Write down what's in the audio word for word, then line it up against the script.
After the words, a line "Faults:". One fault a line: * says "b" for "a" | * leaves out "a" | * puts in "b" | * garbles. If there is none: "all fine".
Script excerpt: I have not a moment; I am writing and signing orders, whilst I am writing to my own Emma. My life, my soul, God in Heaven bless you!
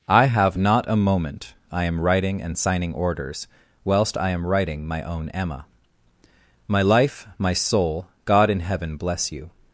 I have not a moment; I am writing and signing orders, whilst I am writing my own Emma. My life, my soul, God in Heaven bless you!
Faults:
* leaves out "to"